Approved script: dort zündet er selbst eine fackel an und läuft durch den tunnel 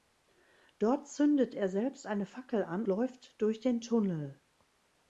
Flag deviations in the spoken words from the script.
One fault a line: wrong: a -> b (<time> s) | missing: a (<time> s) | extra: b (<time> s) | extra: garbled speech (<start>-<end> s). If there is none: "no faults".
missing: und (2.8 s)